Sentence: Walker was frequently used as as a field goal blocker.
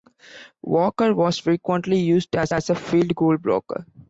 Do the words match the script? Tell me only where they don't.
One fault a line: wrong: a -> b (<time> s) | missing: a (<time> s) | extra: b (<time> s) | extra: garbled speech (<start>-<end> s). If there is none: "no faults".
no faults